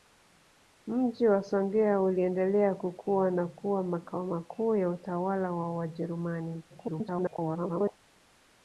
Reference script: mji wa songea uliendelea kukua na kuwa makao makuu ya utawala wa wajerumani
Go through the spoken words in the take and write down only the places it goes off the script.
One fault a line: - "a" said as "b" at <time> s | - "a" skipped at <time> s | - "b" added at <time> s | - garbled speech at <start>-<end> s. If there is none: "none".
- garbled speech at 6.7-8.0 s